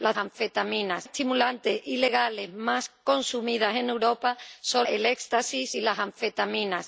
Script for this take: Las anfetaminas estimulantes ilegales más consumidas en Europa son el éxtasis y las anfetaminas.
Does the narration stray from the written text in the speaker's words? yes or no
no